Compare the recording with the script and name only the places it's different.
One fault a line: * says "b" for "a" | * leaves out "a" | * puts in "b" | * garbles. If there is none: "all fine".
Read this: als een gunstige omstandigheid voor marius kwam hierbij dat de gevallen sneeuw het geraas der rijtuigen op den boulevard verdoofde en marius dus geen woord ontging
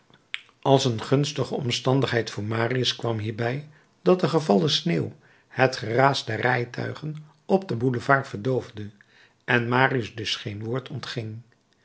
all fine